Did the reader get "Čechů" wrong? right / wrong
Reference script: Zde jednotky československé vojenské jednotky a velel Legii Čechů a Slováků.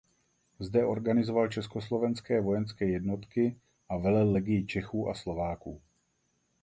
right